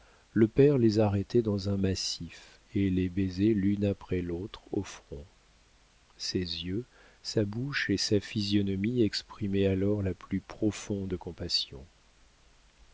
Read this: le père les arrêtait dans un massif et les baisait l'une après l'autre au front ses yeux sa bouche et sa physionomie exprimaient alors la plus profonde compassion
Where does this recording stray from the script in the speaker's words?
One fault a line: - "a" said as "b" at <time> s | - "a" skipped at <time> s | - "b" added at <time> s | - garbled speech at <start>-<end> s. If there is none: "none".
none